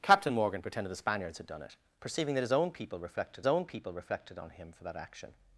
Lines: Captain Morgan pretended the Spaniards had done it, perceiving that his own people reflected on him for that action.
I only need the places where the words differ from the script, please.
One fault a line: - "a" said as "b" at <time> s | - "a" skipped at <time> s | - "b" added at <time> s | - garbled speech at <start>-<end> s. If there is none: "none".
- "own people reflected" added at 3.5 s